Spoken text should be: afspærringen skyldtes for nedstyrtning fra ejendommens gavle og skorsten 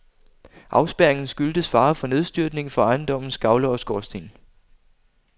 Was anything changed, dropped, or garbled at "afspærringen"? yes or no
no